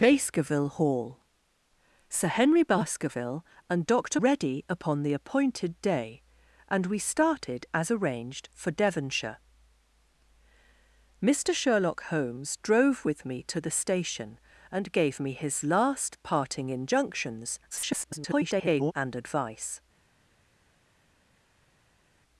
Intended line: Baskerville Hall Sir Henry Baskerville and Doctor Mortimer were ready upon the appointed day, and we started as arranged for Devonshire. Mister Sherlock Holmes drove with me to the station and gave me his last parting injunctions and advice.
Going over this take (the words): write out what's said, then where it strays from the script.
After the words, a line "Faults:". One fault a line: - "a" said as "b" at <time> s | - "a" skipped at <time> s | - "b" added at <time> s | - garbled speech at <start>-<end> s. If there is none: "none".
Baskerville Hall Sir Henry Baskerville and Doctor Ready upon the appointed day, and we started as arranged for Devonshire. Mister Sherlock Holmes drove with me to the station and gave me his last parting injunctions [garbled] and advice.
Faults:
- "Mortimer were" skipped at 4.2 s
- garbled speech at 17.7-18.9 s